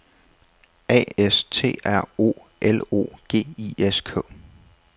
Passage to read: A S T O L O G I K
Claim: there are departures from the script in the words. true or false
true